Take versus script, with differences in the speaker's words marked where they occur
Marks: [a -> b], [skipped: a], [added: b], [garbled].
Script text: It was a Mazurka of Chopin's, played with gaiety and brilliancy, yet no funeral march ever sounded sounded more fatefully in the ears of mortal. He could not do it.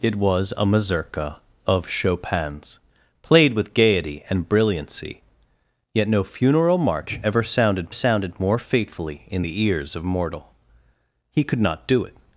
It was a Mazurka of Chopin's, played with gaiety and brilliancy, yet no funeral march ever sounded sounded more fatefully in the ears of mortal. He could not do it.